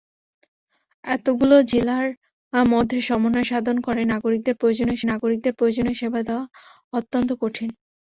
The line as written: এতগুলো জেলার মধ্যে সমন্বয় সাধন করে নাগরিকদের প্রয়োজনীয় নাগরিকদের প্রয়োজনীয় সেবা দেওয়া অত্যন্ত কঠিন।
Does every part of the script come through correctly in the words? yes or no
yes